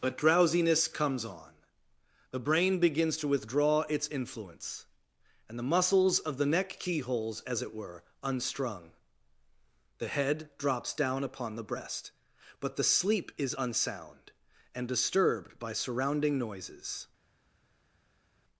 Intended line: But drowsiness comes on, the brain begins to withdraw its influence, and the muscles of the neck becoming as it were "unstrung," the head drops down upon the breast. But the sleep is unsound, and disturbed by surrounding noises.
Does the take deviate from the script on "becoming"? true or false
true